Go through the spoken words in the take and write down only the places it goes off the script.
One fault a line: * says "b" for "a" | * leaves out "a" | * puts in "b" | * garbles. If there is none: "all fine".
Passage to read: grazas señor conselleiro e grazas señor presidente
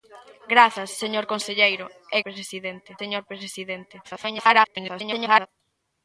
* says "presidente" for "grazas"
* garbles